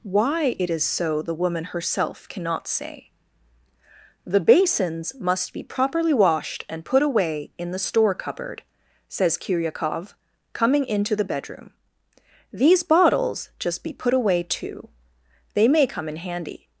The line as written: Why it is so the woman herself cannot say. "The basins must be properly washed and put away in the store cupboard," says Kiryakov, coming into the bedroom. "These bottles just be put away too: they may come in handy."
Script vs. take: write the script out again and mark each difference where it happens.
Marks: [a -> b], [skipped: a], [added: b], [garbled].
Why it is so the woman herself cannot say. "The basins must be properly washed and put away in the store cupboard," says Kiryakov, coming into the bedroom. "These bottles just be put away too: they may come in handy."